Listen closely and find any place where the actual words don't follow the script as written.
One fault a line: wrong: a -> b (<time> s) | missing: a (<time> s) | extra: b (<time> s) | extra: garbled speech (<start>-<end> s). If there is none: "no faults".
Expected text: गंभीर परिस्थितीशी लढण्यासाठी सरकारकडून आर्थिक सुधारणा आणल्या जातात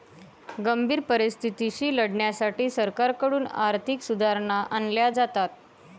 no faults